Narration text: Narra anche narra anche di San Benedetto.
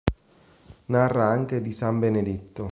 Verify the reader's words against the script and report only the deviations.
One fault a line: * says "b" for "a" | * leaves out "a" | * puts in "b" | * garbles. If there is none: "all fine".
* leaves out "narra anche"